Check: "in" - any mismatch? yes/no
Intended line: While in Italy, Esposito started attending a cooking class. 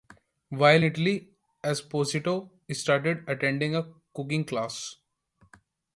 yes